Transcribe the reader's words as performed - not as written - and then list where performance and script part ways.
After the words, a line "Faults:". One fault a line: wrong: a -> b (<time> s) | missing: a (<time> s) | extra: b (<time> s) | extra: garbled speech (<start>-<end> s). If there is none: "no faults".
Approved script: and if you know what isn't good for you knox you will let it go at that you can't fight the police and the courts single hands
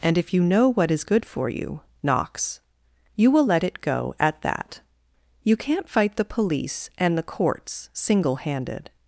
and if you know what is good for you knox you will let it go at that you can't fight the police and the courts single handed
Faults:
wrong: isn't -> is (0.9 s)
wrong: hands -> handed (8.4 s)